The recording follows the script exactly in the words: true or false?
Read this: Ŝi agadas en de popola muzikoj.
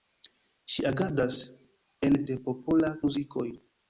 true